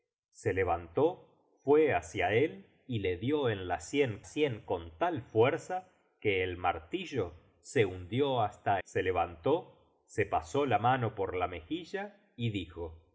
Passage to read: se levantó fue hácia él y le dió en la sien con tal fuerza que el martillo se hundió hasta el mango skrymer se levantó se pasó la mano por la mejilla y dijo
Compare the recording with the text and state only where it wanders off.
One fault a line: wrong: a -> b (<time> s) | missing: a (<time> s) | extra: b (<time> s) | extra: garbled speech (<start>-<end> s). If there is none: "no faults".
extra: sien (4.2 s)
missing: el mango skrymer (8.8 s)